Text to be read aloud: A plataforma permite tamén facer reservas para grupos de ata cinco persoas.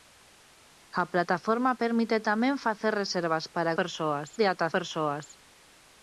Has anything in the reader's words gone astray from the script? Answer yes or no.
yes